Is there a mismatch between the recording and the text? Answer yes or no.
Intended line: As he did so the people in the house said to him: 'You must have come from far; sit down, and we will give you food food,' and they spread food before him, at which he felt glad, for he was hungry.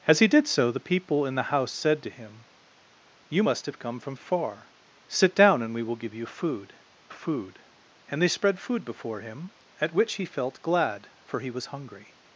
no